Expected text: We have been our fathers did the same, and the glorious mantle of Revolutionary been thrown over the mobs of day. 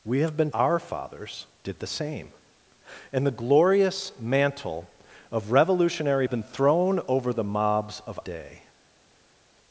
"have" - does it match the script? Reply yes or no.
yes